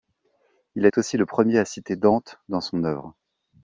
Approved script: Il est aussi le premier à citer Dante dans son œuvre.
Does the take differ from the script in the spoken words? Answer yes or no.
no